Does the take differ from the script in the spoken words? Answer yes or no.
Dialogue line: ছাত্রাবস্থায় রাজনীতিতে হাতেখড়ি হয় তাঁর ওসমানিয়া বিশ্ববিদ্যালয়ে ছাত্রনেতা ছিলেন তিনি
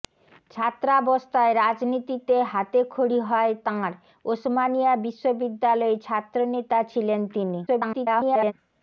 yes